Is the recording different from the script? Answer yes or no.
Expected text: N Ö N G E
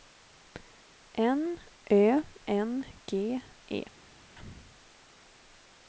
no